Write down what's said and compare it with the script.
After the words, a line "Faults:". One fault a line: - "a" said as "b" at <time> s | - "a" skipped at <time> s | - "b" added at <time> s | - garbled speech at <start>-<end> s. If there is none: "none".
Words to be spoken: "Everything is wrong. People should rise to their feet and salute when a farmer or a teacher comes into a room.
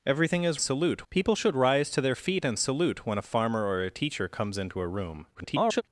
"Everything is salute. People should rise to their feet and salute when a farmer or a teacher comes into a room. [garbled]
Faults:
- "wrong" said as "salute" at 0.6 s
- garbled speech at 5.3-5.8 s